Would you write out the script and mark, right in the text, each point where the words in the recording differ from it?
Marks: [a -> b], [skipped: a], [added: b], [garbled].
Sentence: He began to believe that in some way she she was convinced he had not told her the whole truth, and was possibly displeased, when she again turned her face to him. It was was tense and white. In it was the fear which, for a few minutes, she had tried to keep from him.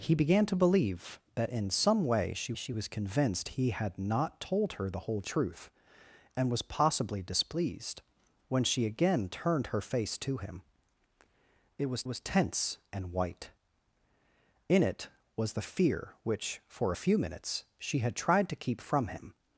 He began to believe that in some way she she was convinced he had not told her the whole truth, and was possibly displeased, when she again turned her face to him. It was was tense and white. In it was the fear which, for a few minutes, she had tried to keep from him.